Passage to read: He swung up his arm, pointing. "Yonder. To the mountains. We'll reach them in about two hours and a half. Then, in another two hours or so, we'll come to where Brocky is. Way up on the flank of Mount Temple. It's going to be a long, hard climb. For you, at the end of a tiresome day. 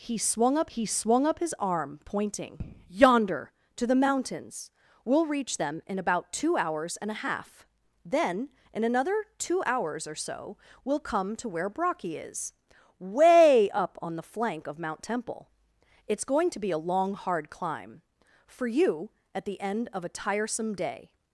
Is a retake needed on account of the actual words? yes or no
yes